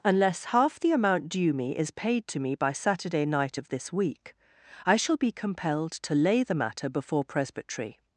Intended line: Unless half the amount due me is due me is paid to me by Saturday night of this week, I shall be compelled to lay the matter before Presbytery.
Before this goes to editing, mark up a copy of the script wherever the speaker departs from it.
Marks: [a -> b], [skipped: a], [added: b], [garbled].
Unless half the amount due me is [skipped: due me is] paid to me by Saturday night of this week, I shall be compelled to lay the matter before Presbytery.